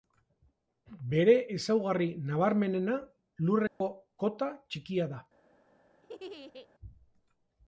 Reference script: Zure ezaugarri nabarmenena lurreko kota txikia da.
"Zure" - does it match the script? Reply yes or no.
no